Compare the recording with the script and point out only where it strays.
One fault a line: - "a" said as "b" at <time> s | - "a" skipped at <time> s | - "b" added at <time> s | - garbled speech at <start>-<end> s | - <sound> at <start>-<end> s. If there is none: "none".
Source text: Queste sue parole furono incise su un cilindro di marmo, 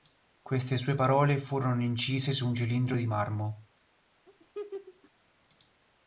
- laugh at 4.3-5.1 s